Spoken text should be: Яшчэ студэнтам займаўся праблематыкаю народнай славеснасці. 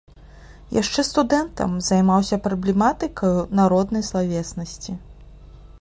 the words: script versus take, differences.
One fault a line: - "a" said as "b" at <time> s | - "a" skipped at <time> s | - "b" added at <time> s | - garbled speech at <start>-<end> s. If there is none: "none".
none